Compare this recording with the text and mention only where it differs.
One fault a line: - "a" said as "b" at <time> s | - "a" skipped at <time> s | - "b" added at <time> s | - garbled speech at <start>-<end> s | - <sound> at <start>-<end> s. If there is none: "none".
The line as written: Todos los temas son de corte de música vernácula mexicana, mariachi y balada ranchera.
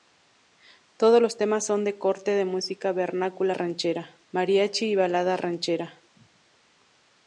- "mexicana" said as "ranchera" at 3.5 s